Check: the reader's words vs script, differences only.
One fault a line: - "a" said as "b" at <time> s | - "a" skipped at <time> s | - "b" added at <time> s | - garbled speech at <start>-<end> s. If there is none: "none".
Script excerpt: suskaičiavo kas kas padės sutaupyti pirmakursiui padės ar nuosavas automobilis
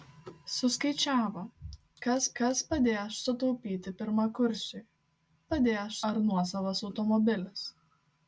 none